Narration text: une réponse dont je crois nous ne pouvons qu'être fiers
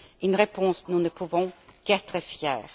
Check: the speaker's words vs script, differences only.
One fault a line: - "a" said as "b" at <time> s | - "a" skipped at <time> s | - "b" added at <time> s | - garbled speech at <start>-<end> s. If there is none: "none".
- "dont je crois" skipped at 0.8 s